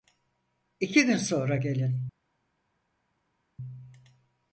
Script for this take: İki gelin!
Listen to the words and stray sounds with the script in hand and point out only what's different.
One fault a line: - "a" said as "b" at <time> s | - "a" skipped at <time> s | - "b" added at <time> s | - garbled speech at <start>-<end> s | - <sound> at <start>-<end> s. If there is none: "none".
- "gün sonra" added at 1.1 s